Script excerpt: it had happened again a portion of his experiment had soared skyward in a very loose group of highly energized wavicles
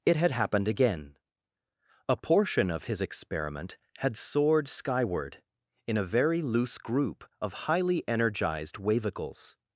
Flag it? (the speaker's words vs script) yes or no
no